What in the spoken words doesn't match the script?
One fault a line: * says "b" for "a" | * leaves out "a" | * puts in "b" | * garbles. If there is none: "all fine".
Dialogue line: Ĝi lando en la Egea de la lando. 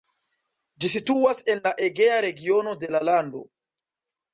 * says "situas" for "lando"
* puts in "regiono"